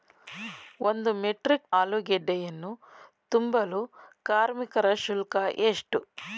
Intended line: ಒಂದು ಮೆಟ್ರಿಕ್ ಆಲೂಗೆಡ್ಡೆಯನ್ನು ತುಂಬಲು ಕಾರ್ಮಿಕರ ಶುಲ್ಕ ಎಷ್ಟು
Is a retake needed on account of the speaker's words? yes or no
no